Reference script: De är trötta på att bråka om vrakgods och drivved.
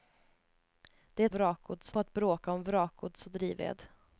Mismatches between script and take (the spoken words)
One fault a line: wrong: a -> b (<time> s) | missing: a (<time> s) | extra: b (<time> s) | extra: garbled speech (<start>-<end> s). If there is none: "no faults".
wrong: trötta -> vrakgods (1.3 s)